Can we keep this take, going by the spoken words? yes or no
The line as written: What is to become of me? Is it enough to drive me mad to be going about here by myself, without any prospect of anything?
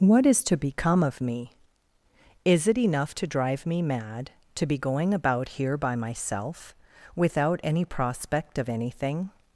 yes